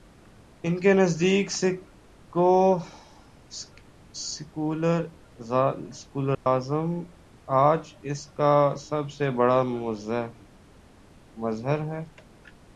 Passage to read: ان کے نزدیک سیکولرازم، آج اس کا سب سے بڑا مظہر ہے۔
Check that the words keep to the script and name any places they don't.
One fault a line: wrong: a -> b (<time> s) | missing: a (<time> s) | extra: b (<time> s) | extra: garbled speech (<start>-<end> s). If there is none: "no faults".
no faults